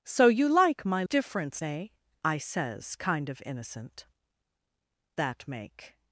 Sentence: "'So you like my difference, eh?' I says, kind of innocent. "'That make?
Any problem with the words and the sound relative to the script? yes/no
no